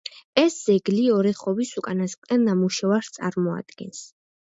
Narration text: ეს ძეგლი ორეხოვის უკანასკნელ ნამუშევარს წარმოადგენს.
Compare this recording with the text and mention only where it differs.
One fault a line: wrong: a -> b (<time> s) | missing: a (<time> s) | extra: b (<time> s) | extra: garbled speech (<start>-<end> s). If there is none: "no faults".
no faults